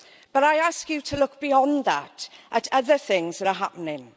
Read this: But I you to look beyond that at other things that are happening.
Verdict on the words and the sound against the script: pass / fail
fail